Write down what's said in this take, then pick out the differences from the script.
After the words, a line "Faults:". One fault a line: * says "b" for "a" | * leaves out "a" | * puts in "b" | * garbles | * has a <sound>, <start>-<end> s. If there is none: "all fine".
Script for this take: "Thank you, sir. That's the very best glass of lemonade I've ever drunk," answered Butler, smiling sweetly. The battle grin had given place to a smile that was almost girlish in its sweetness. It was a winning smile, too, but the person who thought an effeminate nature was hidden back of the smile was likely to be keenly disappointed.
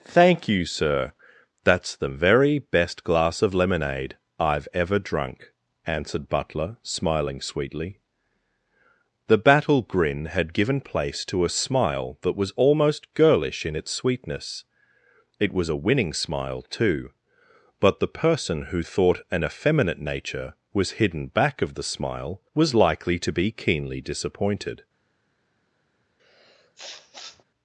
"Thank you, sir. That's the very best glass of lemonade I've ever drunk," answered Butler, smiling sweetly. The battle grin had given place to a smile that was almost girlish in its sweetness. It was a winning smile, too, but the person who thought an effeminate nature was hidden back of the smile was likely to be keenly disappointed.
Faults:
* has a sniff, 26.2-27.4 s